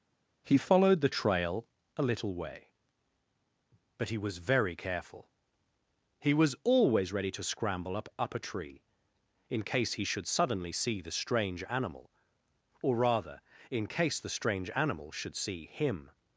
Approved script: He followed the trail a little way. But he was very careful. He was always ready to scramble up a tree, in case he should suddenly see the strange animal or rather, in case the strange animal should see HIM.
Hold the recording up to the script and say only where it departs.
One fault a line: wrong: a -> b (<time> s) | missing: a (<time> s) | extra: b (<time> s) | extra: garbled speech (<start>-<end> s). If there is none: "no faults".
extra: up (8.2 s)